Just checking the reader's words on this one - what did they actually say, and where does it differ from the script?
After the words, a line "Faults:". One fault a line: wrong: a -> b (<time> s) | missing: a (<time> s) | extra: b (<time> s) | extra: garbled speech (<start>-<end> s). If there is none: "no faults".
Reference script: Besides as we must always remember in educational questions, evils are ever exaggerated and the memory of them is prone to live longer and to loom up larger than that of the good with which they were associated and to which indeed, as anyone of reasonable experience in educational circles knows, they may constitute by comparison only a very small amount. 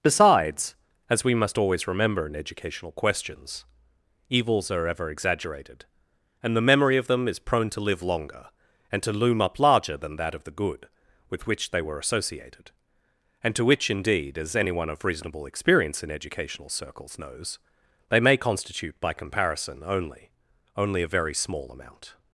Besides as we must always remember in educational questions, evils are ever exaggerated and the memory of them is prone to live longer and to loom up larger than that of the good with which they were associated and to which indeed, as anyone of reasonable experience in educational circles knows, they may constitute by comparison only only a very small amount.
Faults:
extra: only (20.8 s)